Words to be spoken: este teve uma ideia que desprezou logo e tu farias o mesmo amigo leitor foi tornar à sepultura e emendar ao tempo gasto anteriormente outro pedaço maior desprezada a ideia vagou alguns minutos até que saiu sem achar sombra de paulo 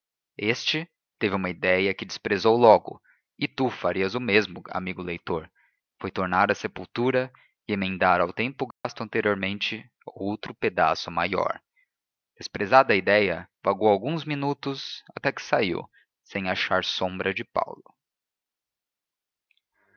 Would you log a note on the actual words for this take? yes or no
no